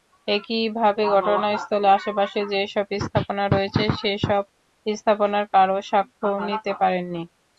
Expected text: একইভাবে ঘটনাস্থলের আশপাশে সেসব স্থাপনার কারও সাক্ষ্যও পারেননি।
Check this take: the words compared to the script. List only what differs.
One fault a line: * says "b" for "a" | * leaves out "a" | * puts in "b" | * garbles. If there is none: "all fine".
* puts in "যেসব স্থাপনা রয়েছে"
* puts in "নিতে"